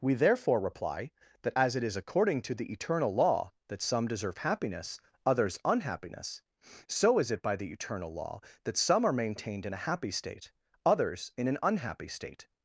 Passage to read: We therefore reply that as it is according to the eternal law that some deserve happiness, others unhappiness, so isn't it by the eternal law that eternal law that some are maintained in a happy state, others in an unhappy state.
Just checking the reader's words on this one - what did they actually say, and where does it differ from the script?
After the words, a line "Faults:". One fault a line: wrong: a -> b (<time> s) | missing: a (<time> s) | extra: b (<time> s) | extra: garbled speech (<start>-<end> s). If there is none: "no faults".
We therefore reply that as it is according to the eternal law that some deserve happiness, others unhappiness, so is it by the eternal law that some are maintained in a happy state, others in an unhappy state.
Faults:
wrong: isn't -> is (7.2 s)
missing: eternal law that (8.8 s)